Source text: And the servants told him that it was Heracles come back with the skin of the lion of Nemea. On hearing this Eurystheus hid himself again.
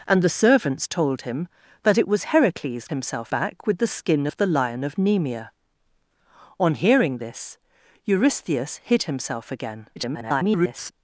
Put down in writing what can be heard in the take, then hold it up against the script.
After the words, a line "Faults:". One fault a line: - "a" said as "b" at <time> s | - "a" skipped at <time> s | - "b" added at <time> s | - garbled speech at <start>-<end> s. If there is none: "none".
And the servants told him that it was Heracles himself back with the skin of the lion of Nemea. On hearing this Eurystheus hid himself again. [garbled]
Faults:
- "come" said as "himself" at 2.9 s
- garbled speech at 10.0-10.9 s